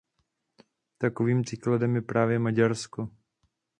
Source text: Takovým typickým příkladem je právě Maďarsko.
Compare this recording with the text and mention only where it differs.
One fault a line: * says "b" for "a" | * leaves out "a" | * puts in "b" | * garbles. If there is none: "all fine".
* leaves out "typickým"